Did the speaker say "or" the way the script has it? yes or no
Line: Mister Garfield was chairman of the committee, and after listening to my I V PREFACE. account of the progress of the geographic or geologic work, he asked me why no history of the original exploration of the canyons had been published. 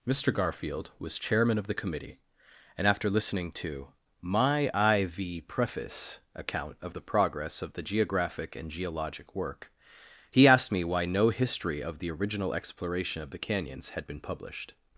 no